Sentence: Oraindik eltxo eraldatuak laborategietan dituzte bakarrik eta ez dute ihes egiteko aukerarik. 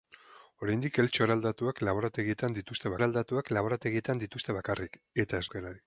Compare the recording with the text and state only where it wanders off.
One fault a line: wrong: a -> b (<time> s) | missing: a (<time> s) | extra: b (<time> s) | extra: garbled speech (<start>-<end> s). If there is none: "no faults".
extra: eraldatuak laborategietan dituzte (3.0 s)
missing: dute ihes egiteko (5.5 s)